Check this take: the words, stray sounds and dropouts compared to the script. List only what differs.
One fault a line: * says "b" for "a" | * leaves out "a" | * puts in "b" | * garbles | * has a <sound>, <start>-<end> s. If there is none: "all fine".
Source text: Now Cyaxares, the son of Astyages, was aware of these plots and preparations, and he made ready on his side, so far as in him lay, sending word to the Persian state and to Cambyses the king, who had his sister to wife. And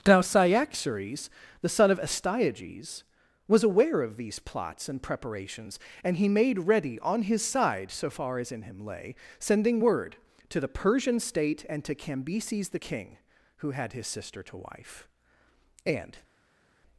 all fine